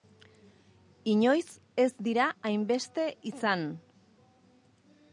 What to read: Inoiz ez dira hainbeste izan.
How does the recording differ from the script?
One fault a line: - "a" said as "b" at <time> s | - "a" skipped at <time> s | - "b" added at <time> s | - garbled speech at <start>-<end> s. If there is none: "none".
none